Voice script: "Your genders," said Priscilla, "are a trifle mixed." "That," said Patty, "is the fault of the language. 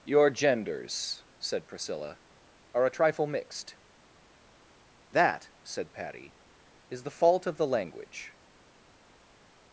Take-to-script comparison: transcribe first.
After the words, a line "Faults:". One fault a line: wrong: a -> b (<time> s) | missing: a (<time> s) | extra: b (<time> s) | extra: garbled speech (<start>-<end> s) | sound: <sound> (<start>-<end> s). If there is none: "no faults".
"Your genders," said Priscilla, "are a trifle mixed." "That," said Patty, "is the fault of the language.
Faults:
no faults